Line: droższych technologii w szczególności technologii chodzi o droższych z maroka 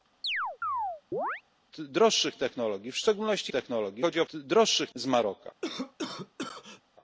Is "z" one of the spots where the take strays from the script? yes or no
no